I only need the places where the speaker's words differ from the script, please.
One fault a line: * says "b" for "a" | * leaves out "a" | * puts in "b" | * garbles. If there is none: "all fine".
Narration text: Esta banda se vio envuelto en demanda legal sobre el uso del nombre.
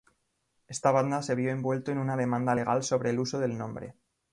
* puts in "una"